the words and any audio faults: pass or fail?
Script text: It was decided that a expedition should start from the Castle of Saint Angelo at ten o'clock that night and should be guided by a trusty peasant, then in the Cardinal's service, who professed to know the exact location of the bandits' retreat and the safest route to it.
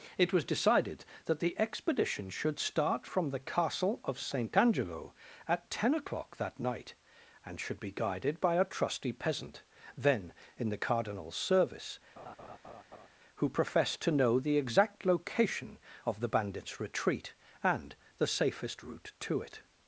fail